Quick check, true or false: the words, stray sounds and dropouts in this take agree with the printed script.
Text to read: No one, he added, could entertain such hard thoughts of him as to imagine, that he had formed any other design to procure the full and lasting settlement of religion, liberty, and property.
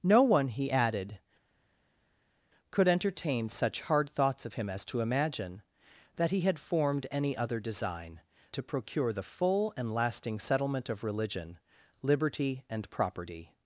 true